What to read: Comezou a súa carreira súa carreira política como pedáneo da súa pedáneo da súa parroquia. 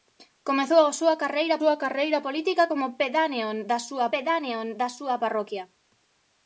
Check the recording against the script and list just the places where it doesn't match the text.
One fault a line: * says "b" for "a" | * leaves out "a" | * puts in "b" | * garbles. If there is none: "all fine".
all fine